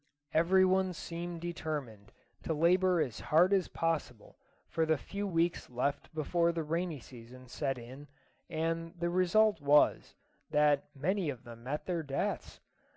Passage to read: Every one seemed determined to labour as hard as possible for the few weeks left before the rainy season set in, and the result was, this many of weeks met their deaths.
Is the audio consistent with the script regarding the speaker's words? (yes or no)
no